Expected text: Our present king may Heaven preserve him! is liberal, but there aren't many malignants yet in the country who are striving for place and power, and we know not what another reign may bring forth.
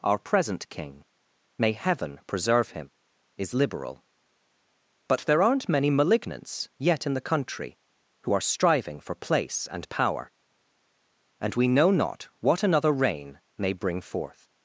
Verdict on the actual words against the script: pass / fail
pass